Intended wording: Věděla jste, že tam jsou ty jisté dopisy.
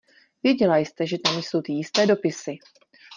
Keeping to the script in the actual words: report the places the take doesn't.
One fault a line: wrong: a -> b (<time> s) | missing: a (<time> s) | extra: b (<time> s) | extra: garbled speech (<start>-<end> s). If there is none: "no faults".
no faults